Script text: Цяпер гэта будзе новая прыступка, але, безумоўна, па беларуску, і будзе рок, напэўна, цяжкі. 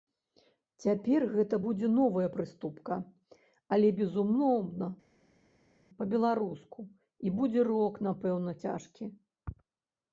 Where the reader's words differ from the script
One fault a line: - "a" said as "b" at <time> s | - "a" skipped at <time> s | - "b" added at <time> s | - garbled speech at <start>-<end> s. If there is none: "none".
none